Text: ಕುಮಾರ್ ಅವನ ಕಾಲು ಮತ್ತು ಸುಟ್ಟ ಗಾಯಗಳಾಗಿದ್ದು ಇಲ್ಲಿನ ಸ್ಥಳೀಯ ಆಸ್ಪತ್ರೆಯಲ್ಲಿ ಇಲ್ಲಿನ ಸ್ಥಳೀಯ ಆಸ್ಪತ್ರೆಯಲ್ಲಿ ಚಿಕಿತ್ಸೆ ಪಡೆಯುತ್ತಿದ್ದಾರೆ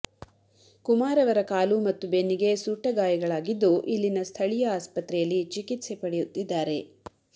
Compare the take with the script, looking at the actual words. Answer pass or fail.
fail